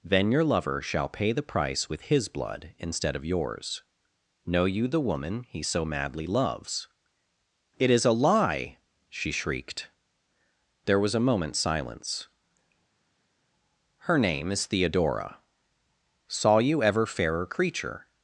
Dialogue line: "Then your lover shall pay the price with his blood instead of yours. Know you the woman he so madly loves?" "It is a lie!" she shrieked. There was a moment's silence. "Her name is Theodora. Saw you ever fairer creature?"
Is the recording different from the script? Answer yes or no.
no